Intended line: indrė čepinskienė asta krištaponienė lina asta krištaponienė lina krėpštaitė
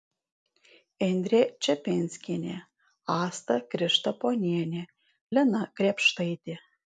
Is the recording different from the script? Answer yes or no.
yes